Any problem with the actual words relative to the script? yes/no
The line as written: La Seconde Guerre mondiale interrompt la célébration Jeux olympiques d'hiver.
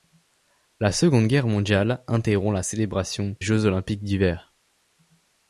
no